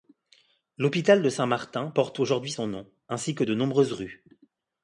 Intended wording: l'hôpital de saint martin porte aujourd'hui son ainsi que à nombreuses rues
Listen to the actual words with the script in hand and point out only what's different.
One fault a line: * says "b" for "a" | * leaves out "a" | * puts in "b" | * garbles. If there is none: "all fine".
* puts in "nom"
* says "de" for "à"